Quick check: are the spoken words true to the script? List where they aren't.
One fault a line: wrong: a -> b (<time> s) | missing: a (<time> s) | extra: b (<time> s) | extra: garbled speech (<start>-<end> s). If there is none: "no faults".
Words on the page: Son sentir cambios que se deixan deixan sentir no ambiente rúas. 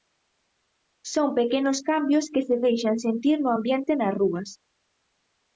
wrong: sentir -> pequenos (1.4 s)
missing: deixan (3.0 s)
extra: nas (4.0 s)